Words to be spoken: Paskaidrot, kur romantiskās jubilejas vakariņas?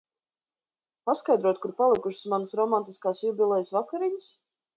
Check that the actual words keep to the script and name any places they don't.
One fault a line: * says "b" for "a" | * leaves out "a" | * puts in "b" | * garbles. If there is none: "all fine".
* puts in "palikušas manas"